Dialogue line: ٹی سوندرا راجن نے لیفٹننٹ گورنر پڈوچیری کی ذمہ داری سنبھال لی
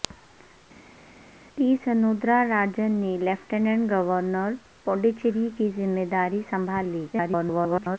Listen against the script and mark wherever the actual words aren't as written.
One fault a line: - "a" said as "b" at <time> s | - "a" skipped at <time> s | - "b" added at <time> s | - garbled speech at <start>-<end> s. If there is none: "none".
- garbled speech at 7.1-8.0 s